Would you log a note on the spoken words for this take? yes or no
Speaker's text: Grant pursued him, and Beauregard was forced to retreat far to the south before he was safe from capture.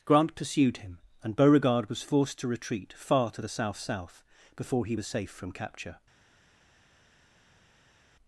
yes